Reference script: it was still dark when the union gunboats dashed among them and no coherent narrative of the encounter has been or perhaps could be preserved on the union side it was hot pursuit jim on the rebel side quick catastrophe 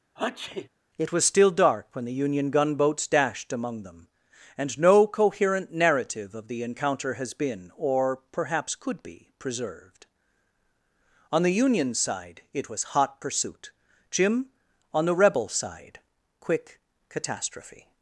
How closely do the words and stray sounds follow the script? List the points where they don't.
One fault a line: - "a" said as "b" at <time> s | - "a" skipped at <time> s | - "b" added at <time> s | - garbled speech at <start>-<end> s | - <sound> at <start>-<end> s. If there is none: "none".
- sneeze at 0.2-0.7 s